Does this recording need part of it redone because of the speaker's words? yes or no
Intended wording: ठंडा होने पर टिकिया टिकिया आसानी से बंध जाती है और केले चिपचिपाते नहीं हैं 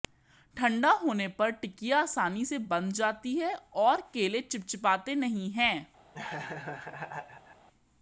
yes